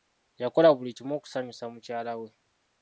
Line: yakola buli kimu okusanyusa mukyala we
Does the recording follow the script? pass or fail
pass